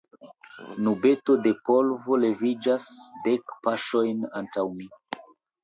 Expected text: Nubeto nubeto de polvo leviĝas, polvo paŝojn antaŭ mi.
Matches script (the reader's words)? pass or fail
fail